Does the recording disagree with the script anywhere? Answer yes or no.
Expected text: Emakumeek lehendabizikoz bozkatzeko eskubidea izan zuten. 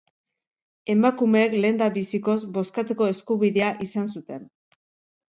no